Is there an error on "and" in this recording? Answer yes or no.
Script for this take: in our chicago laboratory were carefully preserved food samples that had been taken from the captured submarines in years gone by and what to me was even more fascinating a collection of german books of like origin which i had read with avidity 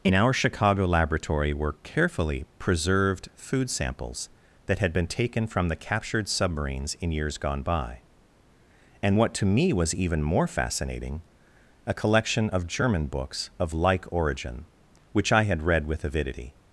no